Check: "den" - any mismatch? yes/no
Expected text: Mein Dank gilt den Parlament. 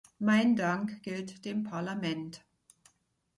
yes